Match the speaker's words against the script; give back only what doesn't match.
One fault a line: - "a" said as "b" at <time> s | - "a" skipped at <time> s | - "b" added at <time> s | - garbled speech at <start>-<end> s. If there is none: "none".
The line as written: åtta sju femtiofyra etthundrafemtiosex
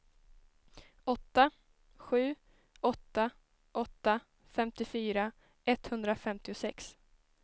- "åtta åtta" added at 2.8 s